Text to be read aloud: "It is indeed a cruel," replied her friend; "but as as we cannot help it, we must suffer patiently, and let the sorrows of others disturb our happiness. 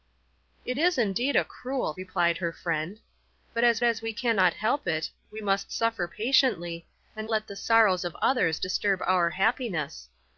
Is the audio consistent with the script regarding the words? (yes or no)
yes